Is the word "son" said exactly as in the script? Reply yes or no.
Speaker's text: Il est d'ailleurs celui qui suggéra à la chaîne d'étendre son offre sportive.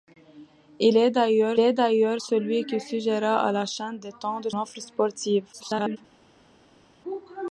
no